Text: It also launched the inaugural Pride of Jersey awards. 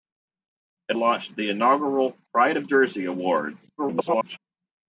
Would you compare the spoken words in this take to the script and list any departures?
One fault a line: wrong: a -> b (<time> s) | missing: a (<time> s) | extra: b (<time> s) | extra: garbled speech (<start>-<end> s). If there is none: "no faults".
missing: also (1.0 s)
extra: garbled speech (3.8-4.4 s)